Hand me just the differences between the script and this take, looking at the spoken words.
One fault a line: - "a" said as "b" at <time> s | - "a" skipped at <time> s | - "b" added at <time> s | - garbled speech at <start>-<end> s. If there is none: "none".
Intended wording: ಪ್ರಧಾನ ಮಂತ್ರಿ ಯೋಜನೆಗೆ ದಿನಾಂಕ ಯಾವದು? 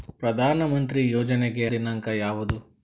none